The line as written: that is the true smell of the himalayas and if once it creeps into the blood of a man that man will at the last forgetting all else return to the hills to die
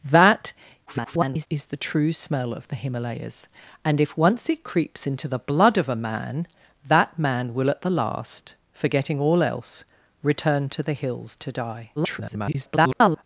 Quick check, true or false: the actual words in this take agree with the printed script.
false